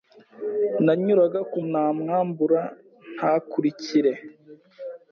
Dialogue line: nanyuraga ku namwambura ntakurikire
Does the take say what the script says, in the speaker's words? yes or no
yes